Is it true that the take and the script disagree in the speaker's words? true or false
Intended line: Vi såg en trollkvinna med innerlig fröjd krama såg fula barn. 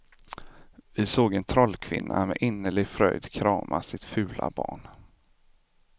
true